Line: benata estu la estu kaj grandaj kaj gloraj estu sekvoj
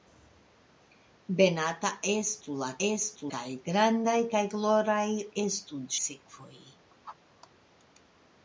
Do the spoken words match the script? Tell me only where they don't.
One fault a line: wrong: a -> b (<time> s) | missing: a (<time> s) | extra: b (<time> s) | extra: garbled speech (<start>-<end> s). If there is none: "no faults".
no faults